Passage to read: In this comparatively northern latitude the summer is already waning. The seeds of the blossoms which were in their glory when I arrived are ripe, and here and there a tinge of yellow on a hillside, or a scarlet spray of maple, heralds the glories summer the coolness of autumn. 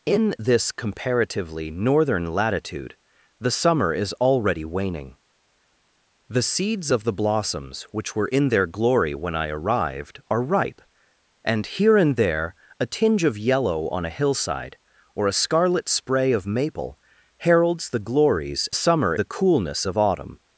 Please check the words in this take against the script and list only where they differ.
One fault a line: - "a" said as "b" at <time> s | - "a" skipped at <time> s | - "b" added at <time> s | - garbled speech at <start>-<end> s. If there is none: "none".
none